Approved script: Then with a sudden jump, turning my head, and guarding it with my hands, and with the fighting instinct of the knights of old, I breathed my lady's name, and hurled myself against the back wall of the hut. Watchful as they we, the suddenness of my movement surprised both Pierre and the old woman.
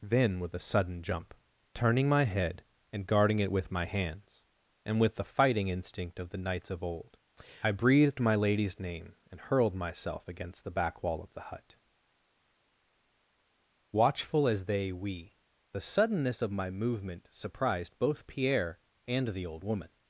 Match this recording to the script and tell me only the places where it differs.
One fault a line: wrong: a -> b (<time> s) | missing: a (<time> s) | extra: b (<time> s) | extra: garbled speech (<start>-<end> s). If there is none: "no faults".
no faults